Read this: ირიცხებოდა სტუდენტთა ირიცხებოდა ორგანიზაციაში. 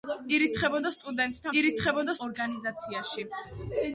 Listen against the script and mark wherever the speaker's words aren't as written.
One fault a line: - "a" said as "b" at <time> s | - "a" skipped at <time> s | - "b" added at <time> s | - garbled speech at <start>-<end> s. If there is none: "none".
none